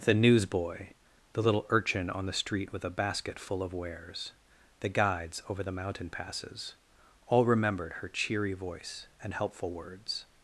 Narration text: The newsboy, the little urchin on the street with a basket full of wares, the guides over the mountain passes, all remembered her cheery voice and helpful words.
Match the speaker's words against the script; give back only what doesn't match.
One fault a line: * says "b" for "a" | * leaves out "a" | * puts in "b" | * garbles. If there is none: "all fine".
all fine